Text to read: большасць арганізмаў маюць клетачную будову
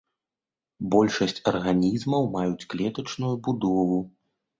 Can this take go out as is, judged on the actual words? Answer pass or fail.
pass